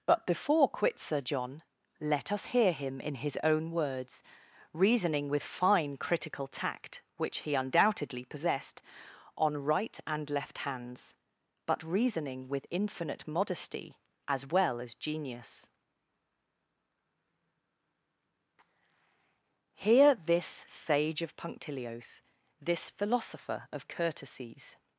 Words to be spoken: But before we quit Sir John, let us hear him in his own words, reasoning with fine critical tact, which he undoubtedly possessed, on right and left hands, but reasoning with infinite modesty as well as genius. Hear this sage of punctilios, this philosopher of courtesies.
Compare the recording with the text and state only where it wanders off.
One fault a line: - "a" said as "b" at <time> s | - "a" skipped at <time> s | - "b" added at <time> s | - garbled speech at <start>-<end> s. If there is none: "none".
- "we" skipped at 0.7 s